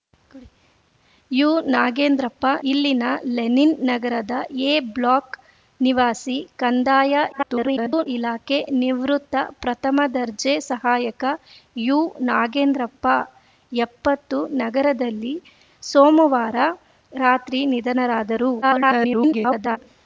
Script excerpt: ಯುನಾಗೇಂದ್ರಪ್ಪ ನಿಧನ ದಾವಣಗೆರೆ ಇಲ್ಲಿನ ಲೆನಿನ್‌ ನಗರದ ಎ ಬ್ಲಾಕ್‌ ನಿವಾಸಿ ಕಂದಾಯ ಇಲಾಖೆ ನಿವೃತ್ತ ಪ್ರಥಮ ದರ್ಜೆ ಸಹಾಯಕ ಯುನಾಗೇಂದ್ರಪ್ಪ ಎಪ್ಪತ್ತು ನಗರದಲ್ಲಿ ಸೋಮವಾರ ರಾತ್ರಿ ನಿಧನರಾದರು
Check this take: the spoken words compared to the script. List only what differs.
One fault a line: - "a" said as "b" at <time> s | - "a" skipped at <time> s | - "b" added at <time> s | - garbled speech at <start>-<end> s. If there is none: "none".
- "ನಿಧನ ದಾವಣಗೆರೆ" skipped at 2.5 s
- garbled speech at 7.3-8.1 s
- garbled speech at 18.6-19.8 s